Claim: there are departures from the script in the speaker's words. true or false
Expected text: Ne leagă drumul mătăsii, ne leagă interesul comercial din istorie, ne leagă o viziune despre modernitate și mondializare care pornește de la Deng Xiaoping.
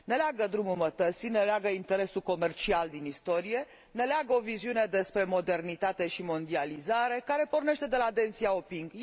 false